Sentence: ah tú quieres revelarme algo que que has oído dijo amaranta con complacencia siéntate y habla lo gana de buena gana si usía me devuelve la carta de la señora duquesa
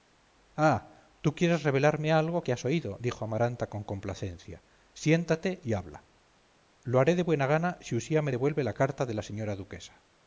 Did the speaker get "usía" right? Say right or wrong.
right